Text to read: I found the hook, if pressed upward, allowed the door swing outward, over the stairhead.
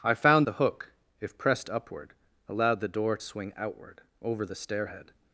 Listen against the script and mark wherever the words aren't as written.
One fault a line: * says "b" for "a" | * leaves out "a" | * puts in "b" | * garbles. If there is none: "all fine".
all fine